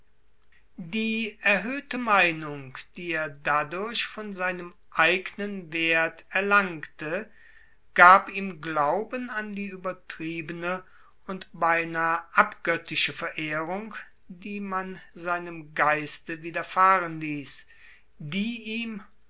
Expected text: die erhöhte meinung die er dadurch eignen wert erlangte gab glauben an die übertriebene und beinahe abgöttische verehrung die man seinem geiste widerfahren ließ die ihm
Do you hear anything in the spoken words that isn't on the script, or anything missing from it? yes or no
yes